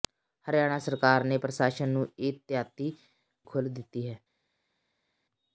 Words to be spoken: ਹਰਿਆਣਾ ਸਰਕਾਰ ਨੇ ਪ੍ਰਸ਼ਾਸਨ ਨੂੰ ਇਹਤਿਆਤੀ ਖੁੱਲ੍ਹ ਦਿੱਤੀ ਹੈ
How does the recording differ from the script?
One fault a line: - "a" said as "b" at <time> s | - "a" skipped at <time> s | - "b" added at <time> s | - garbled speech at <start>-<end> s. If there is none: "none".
none